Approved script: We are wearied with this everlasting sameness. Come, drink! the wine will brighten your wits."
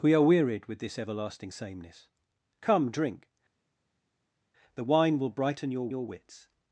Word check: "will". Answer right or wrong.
right